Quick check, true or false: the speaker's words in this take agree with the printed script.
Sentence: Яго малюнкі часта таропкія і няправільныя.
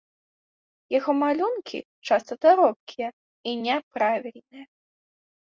true